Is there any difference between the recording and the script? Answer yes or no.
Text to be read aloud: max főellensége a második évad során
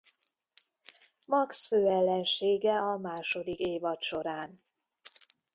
no